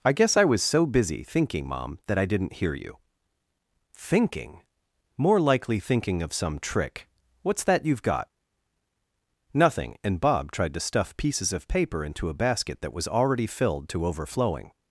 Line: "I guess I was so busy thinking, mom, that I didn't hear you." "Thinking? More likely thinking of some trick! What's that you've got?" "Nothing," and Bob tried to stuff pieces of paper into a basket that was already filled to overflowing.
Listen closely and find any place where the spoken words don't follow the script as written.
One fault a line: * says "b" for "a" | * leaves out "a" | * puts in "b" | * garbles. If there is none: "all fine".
all fine